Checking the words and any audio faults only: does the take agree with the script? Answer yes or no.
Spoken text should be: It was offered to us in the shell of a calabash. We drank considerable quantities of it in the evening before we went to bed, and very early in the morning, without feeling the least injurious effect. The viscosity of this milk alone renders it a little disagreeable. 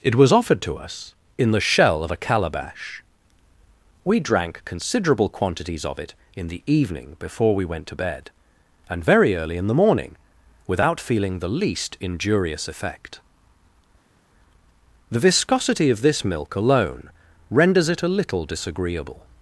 yes